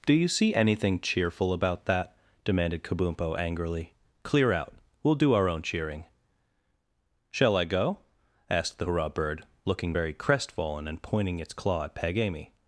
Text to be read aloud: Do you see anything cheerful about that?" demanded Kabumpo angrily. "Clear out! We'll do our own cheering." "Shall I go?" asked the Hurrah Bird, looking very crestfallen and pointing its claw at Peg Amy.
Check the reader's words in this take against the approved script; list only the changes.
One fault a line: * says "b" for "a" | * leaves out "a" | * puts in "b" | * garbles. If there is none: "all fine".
all fine